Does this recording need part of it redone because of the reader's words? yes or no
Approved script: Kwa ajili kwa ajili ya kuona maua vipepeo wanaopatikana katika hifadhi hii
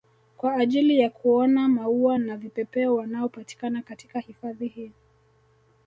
yes